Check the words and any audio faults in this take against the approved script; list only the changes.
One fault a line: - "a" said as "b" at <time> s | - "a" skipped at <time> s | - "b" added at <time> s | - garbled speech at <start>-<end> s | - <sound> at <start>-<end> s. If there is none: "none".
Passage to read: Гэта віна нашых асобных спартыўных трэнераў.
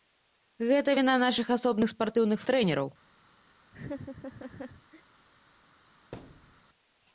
- laugh at 3.7-5.0 s
- thud at 6.1-6.6 s